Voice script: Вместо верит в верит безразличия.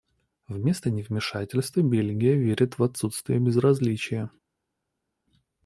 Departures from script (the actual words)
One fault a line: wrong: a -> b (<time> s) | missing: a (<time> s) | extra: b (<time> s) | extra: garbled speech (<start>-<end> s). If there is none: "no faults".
extra: невмешательства Бельгия (0.9 s)
wrong: верит -> отсутствие (2.8 s)